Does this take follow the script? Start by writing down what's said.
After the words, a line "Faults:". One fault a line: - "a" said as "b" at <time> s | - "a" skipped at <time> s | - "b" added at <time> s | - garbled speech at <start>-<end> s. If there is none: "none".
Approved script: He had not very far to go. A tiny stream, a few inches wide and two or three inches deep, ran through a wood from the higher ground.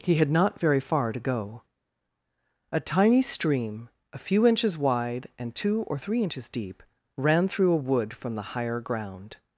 He had not very far to go. A tiny stream, a few inches wide and two or three inches deep, ran through a wood from the higher ground.
Faults:
none